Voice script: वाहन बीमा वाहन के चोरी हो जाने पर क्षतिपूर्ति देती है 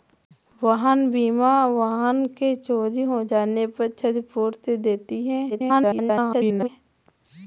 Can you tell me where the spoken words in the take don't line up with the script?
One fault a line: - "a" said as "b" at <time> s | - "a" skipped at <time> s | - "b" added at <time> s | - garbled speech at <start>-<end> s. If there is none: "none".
- garbled speech at 5.5-6.7 s